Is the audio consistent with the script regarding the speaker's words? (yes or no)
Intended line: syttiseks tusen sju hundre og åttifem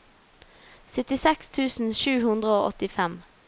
yes